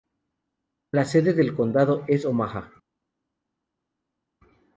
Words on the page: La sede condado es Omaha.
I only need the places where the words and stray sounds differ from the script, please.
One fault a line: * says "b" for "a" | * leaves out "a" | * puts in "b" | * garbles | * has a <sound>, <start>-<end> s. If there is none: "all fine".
* puts in "del"